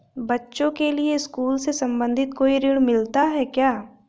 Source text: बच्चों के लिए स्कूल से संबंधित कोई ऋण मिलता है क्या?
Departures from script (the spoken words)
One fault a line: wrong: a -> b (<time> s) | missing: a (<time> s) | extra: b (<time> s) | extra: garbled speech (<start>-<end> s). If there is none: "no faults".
no faults